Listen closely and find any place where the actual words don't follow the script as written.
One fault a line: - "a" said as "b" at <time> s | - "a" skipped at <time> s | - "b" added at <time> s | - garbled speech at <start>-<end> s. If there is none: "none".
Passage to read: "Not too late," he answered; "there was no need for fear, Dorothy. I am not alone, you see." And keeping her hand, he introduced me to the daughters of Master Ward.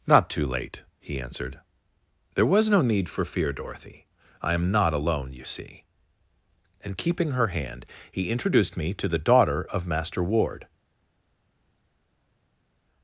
- "daughters" said as "daughter" at 9.2 s